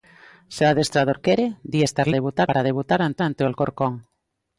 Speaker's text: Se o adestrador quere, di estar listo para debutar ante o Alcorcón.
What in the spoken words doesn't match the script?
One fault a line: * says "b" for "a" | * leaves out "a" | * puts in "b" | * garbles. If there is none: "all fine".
* says "debutar" for "listo"
* puts in "ante"